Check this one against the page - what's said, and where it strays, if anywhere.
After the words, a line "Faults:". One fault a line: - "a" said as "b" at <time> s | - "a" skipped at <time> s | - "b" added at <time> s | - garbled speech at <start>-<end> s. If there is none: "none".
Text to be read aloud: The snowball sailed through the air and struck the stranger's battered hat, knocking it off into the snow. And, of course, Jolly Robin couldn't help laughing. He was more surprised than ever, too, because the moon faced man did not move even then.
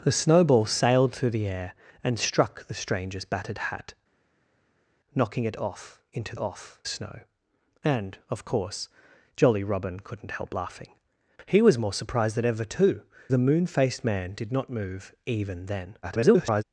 The snowball sailed through the air and struck the stranger's battered hat, knocking it off into off snow. And, of course, Jolly Robin couldn't help laughing. He was more surprised than ever, too, the moon faced man did not move even then. [garbled]
Faults:
- "the" said as "off" at 6.4 s
- "because" skipped at 13.0 s
- garbled speech at 16.0-16.6 s